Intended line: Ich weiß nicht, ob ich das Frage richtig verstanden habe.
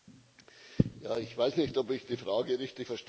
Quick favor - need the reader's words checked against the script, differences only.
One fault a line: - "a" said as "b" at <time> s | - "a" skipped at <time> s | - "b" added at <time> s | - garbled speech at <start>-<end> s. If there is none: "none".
- "das" said as "die" at 2.0 s